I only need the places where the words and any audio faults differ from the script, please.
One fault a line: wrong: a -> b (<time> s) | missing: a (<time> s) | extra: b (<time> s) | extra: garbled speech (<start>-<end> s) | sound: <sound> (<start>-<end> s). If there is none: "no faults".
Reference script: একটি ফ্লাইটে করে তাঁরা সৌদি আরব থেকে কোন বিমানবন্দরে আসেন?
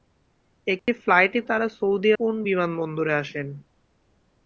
sound: dropout (0.8-0.9 s)
missing: করে (1.4 s)
missing: আরব থেকে (2.1 s)